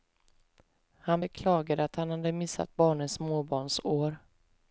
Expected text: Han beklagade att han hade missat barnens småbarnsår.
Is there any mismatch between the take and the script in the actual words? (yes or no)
no